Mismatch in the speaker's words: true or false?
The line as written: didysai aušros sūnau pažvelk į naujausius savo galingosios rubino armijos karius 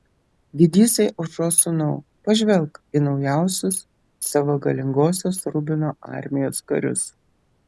false